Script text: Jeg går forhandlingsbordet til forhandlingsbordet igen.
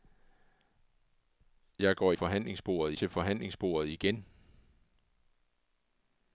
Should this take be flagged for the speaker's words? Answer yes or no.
no